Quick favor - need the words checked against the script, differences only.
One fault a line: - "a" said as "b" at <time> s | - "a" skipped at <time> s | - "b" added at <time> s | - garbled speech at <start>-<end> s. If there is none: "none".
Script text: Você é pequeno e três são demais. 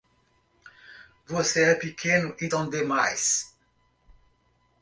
- "três" skipped at 2.5 s